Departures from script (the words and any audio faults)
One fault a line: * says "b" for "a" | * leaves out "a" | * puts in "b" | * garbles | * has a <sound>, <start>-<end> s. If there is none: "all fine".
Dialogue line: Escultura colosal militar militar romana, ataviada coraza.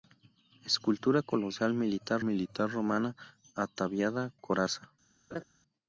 * has a laugh, 5.3-5.4 s